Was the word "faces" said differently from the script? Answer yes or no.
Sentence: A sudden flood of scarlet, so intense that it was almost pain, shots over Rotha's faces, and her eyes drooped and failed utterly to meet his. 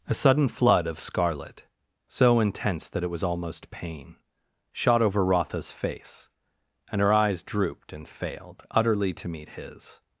yes